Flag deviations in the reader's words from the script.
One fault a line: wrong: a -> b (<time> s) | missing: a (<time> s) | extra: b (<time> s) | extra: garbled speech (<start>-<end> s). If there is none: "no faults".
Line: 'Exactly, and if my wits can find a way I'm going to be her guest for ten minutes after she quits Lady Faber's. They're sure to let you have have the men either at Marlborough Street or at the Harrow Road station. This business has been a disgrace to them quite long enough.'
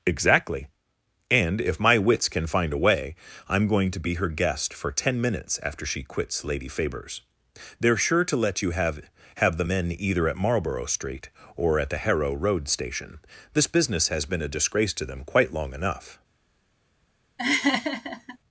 no faults